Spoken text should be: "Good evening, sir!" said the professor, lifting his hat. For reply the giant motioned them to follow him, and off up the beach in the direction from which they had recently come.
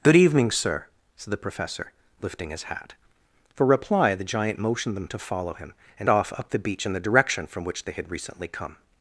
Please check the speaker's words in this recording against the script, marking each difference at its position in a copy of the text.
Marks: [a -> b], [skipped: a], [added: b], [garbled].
"Good evening, sir!" said the professor, lifting his hat. For reply the giant motioned them to follow him, and off up the beach in the direction from which they had recently come.